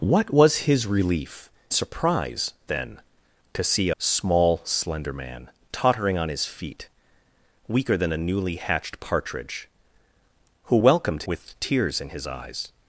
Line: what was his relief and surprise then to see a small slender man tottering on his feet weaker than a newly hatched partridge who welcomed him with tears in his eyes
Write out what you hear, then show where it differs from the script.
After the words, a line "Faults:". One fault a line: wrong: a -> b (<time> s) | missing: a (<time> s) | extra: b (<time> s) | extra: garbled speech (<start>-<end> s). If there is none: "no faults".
what was his relief surprise then to see small slender man tottering on his feet weaker than a newly hatched partridge who welcomed with tears in his eyes
Faults:
missing: and (1.5 s)
missing: a (3.9 s)
missing: him (11.2 s)